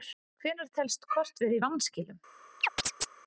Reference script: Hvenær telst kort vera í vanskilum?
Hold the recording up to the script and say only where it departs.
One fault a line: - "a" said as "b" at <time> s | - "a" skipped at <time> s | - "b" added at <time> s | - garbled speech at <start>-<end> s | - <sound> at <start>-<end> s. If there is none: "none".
- chirp at 2.6-3.1 s